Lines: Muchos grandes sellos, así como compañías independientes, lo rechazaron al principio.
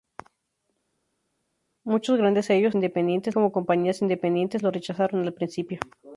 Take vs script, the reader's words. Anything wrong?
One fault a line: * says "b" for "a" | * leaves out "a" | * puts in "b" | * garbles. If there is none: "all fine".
* says "independientes" for "así"